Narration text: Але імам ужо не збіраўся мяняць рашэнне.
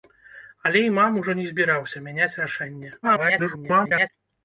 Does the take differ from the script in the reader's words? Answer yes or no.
yes